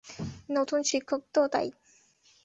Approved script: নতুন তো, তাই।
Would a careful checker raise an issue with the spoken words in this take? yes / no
yes